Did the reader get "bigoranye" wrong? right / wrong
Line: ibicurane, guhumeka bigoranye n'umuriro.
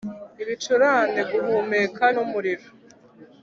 wrong